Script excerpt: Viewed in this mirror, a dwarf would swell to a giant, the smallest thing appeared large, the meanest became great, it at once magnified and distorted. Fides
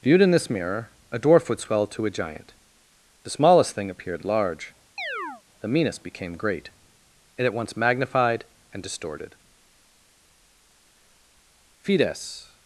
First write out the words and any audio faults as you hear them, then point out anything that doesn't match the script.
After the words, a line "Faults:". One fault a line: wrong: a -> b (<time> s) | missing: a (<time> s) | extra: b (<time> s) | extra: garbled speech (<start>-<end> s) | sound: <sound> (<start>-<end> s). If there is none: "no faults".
Viewed in this mirror, a dwarf would swell to a giant, the smallest thing appeared large, the meanest became great, it at once magnified and distorted. Fides
Faults:
sound: chirp (5.0-5.4 s)